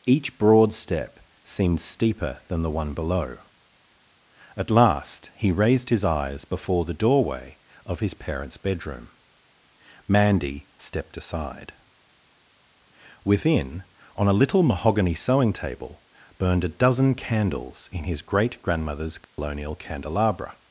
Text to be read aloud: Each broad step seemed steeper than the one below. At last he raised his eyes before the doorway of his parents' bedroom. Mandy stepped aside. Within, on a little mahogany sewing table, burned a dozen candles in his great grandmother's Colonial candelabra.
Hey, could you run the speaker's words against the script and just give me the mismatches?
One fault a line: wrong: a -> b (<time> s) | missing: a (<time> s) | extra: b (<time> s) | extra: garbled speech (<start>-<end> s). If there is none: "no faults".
no faults